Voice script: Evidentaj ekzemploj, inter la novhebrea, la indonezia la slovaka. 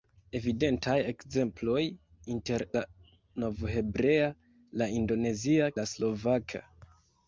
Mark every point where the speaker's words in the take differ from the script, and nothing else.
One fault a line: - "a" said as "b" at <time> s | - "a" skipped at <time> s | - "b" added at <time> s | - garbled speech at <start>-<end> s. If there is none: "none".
none